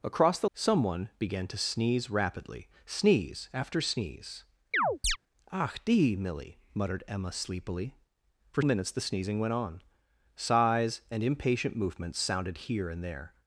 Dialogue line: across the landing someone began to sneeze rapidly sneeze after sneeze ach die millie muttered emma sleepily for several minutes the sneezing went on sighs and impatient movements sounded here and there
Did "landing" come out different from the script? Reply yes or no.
yes